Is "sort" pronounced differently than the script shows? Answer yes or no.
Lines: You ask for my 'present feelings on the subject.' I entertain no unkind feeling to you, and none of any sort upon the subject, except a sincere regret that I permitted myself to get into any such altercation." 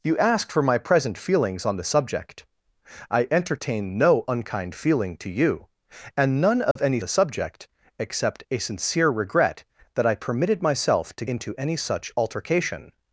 yes